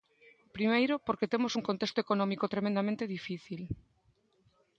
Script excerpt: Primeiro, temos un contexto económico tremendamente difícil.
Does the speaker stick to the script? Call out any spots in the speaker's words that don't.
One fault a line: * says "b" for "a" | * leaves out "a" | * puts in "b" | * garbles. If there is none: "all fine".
* puts in "porque"